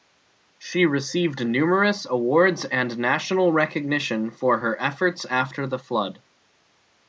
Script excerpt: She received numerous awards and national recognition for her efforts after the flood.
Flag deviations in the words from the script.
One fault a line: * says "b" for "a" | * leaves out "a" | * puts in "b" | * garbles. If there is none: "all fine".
all fine